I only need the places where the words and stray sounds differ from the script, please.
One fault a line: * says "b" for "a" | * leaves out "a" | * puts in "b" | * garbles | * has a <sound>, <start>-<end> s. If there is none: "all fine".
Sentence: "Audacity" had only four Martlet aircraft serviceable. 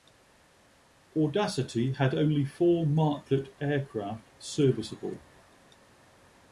all fine